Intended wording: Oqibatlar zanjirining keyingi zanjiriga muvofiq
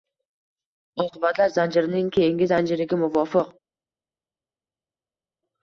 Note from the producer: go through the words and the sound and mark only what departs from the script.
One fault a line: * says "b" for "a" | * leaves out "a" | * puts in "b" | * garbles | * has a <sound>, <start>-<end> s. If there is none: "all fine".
all fine